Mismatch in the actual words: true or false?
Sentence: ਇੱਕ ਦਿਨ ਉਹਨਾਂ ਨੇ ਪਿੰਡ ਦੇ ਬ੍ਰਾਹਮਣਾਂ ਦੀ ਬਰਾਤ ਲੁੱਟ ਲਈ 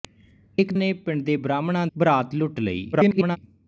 true